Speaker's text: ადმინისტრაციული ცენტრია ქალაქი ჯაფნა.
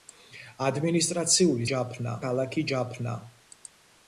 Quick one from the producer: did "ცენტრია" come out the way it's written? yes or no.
no